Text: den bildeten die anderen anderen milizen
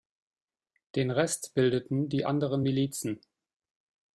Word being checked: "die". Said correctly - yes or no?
yes